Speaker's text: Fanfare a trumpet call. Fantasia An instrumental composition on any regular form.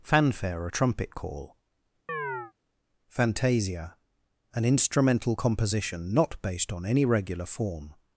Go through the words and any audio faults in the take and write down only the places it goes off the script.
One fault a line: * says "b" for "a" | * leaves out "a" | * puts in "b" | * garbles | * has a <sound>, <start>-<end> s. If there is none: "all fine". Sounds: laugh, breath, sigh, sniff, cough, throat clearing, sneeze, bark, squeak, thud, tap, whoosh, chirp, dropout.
* has a chirp, 2.1-2.5 s
* puts in "not based"